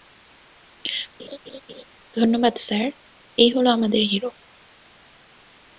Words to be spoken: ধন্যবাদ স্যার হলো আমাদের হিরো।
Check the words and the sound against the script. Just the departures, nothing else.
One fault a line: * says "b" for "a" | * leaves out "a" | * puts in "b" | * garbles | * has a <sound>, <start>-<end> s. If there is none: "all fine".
* has a laugh, 1.2-1.8 s
* puts in "এই"